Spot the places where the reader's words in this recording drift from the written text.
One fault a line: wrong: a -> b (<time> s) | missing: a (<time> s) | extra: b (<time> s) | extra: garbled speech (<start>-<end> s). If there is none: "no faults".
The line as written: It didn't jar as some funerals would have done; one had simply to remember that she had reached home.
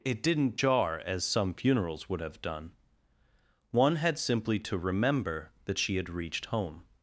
no faults